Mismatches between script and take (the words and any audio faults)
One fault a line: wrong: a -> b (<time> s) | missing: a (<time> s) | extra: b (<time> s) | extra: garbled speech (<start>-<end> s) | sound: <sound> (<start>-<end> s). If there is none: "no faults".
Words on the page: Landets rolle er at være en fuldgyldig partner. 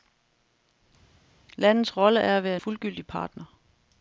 missing: en (2.6 s)